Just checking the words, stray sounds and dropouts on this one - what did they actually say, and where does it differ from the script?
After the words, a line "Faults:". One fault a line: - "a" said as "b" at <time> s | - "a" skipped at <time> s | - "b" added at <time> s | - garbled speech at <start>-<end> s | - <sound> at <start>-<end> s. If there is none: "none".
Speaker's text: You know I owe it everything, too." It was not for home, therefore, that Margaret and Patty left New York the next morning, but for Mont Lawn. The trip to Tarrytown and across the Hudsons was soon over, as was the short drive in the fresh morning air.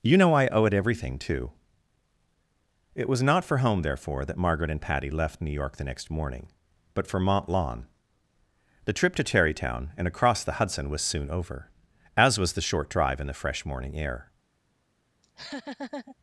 You know I owe it everything, too." It was not for home, therefore, that Margaret and Patty left New York the next morning, but for Mont Lawn. The trip to Tarrytown and across the Hudson was soon over, as was the short drive in the fresh morning air.
Faults:
- "Hudsons" said as "Hudson" at 10.5 s
- laugh at 15.2-16.2 s